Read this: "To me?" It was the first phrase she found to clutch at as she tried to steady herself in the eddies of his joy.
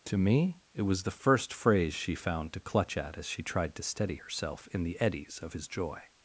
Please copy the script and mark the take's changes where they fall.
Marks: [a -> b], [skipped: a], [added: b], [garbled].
"To me?" It was the first phrase she found to clutch at as she tried to steady herself in the eddies of his joy.